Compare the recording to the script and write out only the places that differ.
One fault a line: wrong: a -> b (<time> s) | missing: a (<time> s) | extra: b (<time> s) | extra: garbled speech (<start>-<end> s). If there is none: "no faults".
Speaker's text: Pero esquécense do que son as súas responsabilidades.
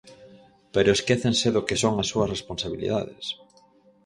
no faults